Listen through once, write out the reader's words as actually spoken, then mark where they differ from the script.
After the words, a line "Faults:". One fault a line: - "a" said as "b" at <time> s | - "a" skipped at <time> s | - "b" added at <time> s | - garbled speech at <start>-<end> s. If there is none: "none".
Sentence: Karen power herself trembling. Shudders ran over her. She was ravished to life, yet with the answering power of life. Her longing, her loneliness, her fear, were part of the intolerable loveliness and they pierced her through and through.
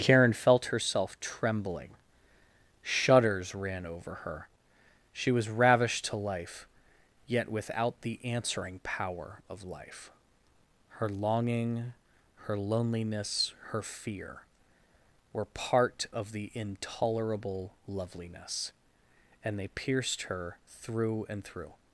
Karen felt herself trembling. Shudders ran over her. She was ravished to life, yet without the answering power of life. Her longing, her loneliness, her fear, were part of the intolerable loveliness and they pierced her through and through.
Faults:
- "power" said as "felt" at 0.3 s
- "with" said as "without" at 7.5 s